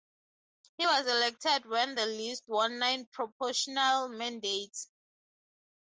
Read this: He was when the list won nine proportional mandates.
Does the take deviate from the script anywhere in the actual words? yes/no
yes